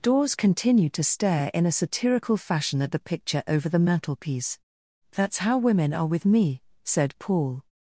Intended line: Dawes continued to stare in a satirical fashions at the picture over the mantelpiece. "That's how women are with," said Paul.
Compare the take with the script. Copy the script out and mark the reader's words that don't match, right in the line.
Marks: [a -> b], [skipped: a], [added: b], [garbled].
Dawes continued to stare in a satirical [fashions -> fashion] at the picture over the mantelpiece. "That's how women are with," [added: me] said Paul.